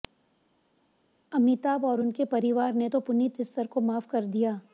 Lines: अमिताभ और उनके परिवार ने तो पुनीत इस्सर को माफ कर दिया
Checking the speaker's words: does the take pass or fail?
pass